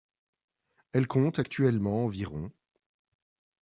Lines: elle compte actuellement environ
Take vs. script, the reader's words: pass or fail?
pass